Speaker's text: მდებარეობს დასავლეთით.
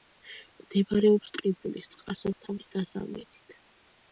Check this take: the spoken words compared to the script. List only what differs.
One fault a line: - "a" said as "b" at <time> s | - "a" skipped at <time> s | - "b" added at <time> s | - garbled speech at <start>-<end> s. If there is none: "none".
- "ტყიბულის წყალსაცავის" added at 1.4 s